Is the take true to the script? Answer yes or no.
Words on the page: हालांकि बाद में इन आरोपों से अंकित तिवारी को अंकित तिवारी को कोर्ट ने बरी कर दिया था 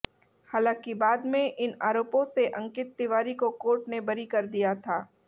no